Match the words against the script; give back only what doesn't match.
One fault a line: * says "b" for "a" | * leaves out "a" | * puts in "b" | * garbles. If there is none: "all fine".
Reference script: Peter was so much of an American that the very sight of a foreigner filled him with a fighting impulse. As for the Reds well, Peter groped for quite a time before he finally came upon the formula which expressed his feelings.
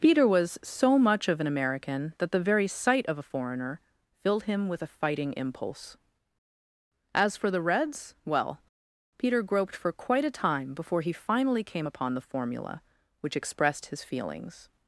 all fine